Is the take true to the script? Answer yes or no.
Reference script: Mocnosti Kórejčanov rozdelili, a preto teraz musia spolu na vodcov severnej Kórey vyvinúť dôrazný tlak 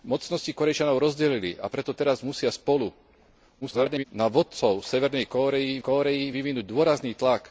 no